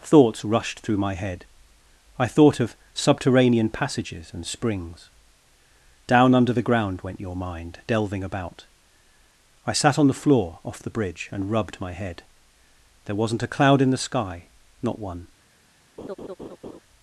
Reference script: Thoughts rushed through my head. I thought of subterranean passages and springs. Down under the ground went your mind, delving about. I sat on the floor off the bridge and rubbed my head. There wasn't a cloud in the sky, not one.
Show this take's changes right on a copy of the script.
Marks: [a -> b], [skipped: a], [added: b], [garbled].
Thoughts rushed through my head. I thought of subterranean passages and springs. Down under the ground went your mind, delving about. I sat on the floor off the bridge and rubbed my head. There wasn't a cloud in the sky, not one.